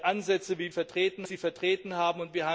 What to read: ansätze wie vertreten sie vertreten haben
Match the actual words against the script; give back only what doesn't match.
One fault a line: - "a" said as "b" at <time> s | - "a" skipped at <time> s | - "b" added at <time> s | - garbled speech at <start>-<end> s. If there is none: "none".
none